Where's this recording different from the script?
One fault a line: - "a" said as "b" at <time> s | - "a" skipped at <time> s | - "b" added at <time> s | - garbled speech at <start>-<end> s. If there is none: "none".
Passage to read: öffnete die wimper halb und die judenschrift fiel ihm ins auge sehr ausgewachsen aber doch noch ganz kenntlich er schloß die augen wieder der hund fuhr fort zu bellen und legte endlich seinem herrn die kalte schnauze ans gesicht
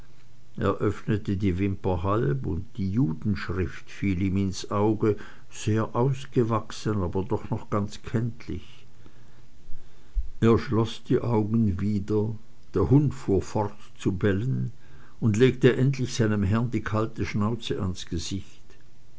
none